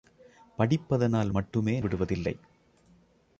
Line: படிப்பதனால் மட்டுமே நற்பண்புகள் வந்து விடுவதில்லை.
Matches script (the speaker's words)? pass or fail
fail